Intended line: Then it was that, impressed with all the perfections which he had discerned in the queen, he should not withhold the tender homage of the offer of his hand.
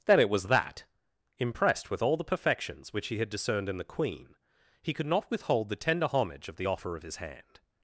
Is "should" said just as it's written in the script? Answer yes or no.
no